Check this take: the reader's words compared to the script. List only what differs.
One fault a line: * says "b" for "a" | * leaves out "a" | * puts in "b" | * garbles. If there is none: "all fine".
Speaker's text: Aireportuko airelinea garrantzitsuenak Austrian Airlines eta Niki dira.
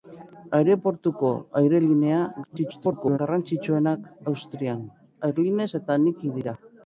* garbles